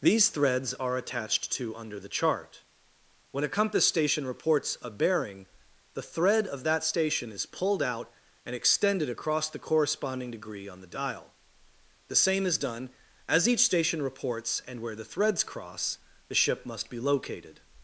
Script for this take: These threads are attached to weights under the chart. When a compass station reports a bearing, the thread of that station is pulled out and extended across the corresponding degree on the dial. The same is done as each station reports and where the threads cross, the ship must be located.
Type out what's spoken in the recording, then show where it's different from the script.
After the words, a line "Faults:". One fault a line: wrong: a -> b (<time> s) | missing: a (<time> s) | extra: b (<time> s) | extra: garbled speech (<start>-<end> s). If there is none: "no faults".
These threads are attached to under the chart. When a compass station reports a bearing, the thread of that station is pulled out and extended across the corresponding degree on the dial. The same is done as each station reports and where the threads cross, the ship must be located.
Faults:
missing: weights (1.8 s)